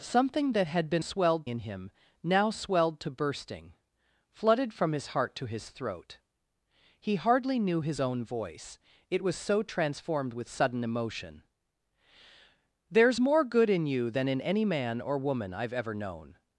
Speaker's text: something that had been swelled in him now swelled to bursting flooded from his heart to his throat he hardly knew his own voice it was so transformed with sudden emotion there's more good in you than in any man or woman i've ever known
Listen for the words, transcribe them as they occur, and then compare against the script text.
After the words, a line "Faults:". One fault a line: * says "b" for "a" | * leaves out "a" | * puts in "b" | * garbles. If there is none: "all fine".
something that had been swelled in him now swelled to bursting flooded from his heart to his throat he hardly knew his own voice it was so transformed with sudden emotion there's more good in you than in any man or woman i've ever known
Faults:
all fine